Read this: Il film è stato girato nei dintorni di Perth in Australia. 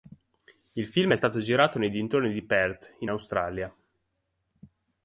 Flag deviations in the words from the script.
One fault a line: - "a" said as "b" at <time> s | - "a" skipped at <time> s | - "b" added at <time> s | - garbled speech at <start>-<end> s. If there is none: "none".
none